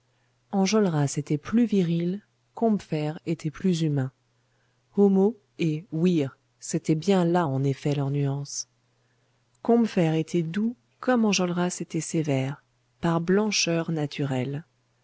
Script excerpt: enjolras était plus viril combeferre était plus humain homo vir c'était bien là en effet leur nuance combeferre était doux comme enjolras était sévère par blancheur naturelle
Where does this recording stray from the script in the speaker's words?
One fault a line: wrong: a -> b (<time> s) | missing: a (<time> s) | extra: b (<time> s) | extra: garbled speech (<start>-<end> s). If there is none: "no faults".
extra: et (5.6 s)